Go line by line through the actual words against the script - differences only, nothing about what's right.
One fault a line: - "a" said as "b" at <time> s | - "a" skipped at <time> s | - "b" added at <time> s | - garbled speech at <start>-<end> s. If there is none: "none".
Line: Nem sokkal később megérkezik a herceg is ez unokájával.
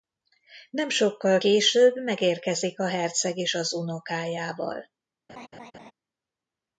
- "ez" said as "az" at 3.5 s